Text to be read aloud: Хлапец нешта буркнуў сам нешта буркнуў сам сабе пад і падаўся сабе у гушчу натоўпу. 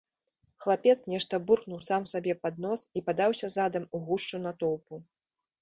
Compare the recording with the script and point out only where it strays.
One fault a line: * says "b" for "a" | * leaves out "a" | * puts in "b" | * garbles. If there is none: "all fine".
* leaves out "нешта буркнуў сам"
* puts in "нос"
* says "задам" for "сабе"